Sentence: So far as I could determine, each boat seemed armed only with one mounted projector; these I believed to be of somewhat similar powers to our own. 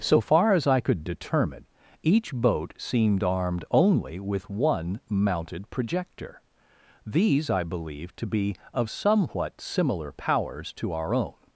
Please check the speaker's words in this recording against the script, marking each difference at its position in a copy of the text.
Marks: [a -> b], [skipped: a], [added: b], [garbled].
So far as I could determine, each boat seemed armed only with one mounted projector; these I believed to be of somewhat similar powers to our own.